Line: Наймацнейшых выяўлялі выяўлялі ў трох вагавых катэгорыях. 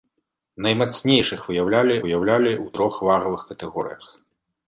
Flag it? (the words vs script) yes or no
no